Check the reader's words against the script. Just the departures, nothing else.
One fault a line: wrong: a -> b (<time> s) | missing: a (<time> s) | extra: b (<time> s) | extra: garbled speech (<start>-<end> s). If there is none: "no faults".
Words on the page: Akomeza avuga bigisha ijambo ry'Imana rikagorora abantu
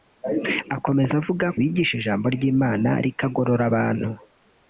no faults